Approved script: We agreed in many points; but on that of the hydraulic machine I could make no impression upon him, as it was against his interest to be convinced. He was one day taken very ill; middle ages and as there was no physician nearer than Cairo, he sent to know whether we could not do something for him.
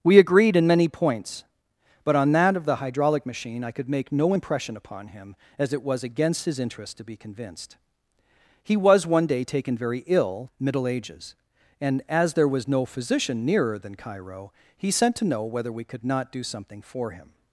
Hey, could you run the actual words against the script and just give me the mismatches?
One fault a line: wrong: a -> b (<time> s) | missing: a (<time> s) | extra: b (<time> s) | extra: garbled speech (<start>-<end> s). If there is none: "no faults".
no faults